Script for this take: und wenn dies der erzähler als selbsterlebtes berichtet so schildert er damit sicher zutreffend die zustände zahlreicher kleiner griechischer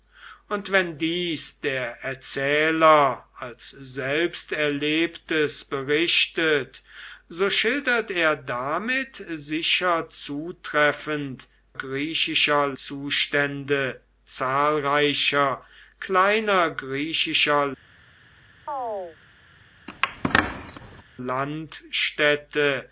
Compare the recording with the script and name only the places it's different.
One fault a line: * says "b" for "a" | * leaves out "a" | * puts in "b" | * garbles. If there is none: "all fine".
* says "griechischer" for "die"